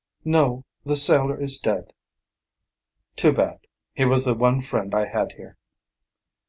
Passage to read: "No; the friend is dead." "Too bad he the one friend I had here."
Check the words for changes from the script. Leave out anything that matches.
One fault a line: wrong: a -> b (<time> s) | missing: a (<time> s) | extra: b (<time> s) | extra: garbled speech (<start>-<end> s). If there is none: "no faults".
wrong: friend -> sailor (1.0 s)
extra: was (4.0 s)